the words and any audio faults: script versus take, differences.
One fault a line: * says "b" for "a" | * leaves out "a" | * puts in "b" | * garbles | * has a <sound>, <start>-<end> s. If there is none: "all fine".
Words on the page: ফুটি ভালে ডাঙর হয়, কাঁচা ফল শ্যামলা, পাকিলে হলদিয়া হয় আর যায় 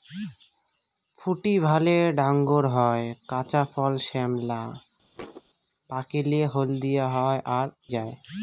* has a thud, 5.2-5.4 s